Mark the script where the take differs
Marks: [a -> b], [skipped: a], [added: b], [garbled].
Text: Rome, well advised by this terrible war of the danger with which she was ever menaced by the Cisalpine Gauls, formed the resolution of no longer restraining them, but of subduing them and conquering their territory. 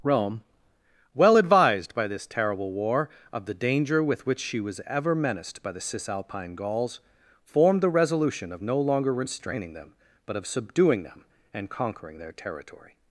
Rome, well advised by this terrible war of the danger with which she was ever menaced by the Cisalpine Gauls, formed the resolution of no longer restraining them, but of subduing them and conquering their territory.